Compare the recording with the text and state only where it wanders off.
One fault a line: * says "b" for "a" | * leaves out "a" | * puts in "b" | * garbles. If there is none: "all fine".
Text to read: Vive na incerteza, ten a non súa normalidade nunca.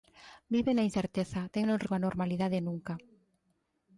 all fine